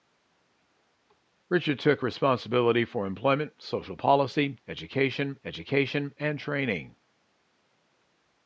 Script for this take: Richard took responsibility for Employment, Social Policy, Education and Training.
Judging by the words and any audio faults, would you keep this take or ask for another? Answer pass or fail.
fail